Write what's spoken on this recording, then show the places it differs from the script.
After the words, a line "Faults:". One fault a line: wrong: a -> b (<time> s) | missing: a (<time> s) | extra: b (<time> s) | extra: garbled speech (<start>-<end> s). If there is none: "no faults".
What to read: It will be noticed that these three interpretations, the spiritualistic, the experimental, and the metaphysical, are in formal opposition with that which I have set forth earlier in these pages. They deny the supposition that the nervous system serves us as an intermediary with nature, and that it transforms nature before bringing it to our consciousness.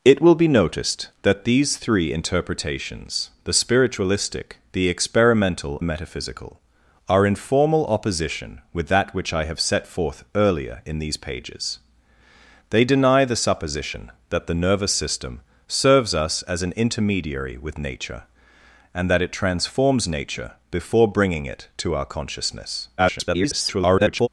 It will be noticed that these three interpretations, the spiritualistic, the experimental, the metaphysical, are in formal opposition with that which I have set forth earlier in these pages. They deny the supposition that the nervous system serves us as an intermediary with nature, and that it transforms nature before bringing it to our consciousness. [garbled]
Faults:
missing: and (5.8 s)
extra: garbled speech (23.0-24.3 s)